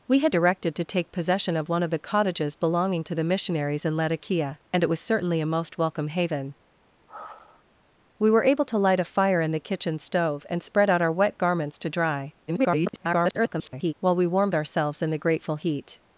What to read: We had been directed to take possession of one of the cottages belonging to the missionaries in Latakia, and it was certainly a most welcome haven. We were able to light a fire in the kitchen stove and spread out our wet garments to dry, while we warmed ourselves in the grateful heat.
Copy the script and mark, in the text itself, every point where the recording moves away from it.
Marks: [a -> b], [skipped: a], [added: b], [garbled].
We had [skipped: been] directed to take possession of one of the cottages belonging to the missionaries in Latakia, and it was certainly a most welcome haven. We were able to light a fire in the kitchen stove and spread out our wet garments to dry, [garbled] while we warmed ourselves in the grateful heat.